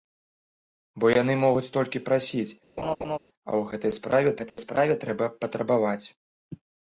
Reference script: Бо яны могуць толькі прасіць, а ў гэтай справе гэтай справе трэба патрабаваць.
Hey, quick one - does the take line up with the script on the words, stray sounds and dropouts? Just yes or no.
no